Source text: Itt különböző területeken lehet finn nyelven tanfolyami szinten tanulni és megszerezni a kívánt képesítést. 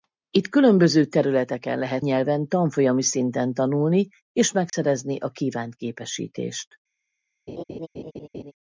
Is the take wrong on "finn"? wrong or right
wrong